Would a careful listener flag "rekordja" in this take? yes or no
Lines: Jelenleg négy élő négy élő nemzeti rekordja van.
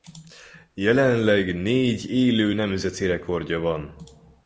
no